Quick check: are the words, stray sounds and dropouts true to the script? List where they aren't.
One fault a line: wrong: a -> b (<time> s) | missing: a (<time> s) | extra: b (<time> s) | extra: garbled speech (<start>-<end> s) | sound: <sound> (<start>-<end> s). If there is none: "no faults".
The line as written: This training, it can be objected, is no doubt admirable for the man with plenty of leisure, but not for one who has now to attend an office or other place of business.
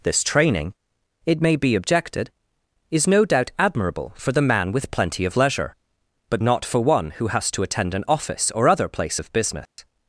wrong: can -> may (1.4 s)
missing: now (7.5 s)
sound: dropout (9.7-9.8 s)